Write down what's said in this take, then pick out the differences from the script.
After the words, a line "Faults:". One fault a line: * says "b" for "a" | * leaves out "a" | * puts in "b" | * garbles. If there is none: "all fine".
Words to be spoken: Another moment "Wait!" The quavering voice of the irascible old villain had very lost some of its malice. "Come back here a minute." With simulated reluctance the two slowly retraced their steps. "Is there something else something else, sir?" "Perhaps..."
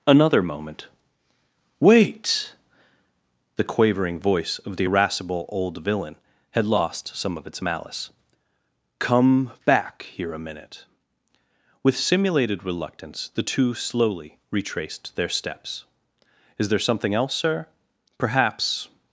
Another moment "Wait!" The quavering voice of the irascible old villain had lost some of its malice. "Come back here a minute." With simulated reluctance the two slowly retraced their steps. "Is there something else, sir?" "Perhaps..."
Faults:
* leaves out "very"
* leaves out "something else"